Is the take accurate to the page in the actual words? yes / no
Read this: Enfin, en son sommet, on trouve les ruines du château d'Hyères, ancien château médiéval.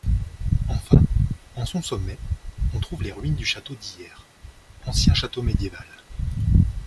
yes